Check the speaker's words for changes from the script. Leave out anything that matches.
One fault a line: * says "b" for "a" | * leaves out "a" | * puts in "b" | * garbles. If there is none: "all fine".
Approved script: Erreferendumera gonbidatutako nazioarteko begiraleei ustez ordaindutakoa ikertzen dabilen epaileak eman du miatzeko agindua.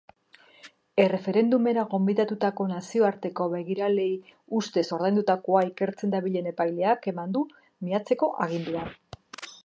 all fine